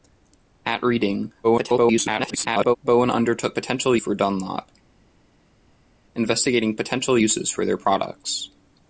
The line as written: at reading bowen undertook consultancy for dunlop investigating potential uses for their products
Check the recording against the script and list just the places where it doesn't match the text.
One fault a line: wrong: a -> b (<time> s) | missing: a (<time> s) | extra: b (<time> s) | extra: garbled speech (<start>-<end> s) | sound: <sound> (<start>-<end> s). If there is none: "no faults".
extra: garbled speech (1.4-2.8 s)
wrong: consultancy -> potential (3.5 s)